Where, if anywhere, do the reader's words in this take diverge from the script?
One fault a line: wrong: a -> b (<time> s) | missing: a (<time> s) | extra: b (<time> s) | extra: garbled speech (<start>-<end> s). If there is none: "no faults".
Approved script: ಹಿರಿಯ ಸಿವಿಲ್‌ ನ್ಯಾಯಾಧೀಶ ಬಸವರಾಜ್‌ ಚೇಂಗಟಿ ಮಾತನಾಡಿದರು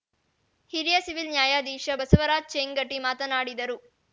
no faults